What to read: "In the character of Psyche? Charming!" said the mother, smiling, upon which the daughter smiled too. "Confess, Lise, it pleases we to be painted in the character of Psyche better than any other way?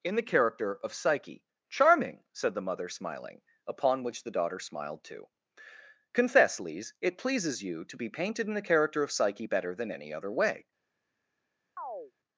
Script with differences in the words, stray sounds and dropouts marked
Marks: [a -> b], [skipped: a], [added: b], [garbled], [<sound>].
"In the character of Psyche? Charming!" said the mother, smiling, upon which the daughter smiled too. "Confess, Lise, it pleases [we -> you] to be painted in the character of Psyche better than any other way? [chirp]